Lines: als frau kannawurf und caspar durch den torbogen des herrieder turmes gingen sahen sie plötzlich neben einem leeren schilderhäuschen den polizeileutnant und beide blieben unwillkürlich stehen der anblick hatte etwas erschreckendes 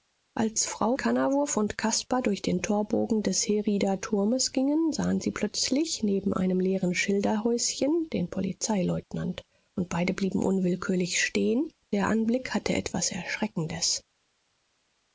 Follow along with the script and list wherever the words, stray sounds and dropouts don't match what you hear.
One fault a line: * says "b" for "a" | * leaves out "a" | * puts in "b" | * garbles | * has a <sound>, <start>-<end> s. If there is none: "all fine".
all fine